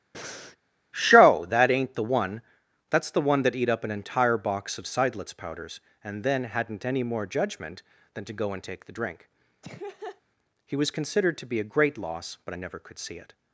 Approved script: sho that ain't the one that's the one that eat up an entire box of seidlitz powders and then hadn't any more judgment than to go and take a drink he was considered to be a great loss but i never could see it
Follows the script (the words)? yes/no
no